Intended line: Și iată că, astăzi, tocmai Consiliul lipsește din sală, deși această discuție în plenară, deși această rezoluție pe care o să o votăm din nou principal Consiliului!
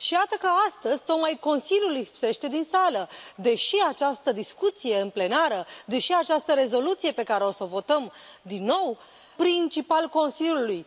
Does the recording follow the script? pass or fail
pass